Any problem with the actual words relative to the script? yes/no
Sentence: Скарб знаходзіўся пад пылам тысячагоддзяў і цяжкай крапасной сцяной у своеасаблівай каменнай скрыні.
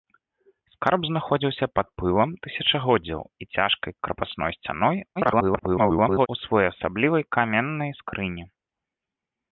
yes